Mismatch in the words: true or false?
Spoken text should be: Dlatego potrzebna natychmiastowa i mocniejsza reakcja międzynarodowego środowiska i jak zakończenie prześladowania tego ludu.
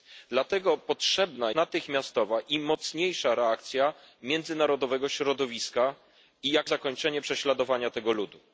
false